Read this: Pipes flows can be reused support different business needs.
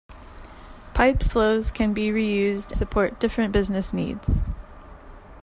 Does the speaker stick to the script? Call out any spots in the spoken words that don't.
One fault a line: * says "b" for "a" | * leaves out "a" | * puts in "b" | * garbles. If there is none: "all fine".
all fine